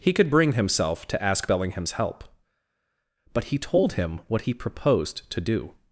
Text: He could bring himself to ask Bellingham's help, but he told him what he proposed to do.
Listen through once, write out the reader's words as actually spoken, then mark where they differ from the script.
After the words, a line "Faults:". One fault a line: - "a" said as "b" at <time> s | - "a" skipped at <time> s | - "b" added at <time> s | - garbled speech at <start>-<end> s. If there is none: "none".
He could bring himself to ask Bellingham's help, but he told him what he proposed to do.
Faults:
none